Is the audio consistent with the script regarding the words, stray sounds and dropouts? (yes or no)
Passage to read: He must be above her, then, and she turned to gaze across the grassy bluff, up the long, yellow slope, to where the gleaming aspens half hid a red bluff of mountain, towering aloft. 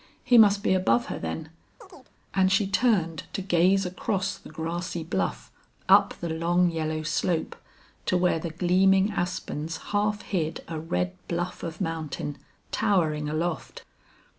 no